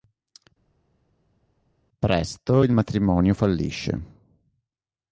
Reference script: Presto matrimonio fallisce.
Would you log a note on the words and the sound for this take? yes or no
yes